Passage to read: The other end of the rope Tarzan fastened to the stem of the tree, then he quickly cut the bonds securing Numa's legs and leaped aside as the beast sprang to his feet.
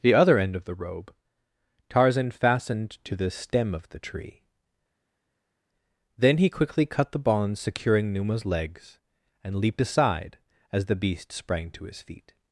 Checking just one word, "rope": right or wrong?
wrong